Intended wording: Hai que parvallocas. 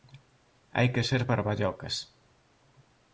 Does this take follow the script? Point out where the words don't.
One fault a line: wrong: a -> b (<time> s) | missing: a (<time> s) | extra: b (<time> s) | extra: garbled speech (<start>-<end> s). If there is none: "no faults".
extra: ser (1.1 s)